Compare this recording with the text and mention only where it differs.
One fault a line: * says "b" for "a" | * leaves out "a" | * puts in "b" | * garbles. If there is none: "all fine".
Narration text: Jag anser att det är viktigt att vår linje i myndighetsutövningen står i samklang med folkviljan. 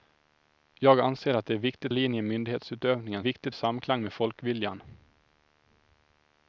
* leaves out "att vår"
* says "viktigt" for "står"